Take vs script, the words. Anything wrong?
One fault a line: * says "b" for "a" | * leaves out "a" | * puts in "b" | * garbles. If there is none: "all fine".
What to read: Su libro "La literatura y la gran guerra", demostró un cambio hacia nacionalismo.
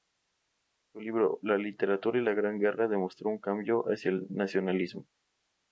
* puts in "el"